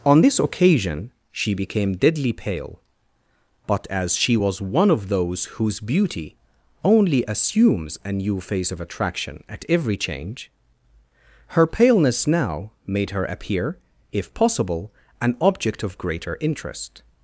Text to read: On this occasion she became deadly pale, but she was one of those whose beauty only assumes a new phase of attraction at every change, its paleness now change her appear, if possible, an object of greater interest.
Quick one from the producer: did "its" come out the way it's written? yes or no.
no